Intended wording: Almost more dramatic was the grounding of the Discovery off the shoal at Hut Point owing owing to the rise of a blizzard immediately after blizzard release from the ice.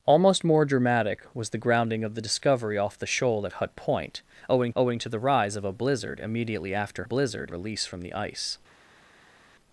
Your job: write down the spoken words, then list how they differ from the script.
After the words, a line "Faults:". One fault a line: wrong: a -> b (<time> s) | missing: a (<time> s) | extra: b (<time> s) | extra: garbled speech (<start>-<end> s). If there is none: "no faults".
Almost more dramatic was the grounding of the Discovery off the shoal at Hut Point owing owing to the rise of a blizzard immediately after blizzard release from the ice.
Faults:
no faults